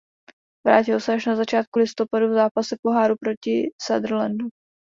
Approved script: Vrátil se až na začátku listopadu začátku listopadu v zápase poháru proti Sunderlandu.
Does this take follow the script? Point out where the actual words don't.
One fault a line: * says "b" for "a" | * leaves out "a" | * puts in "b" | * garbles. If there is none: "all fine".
* leaves out "začátku listopadu"